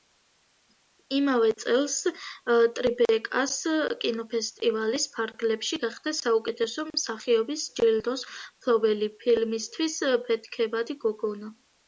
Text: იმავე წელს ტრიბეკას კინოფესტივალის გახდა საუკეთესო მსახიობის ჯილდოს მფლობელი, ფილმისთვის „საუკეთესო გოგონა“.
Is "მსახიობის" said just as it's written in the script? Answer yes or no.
yes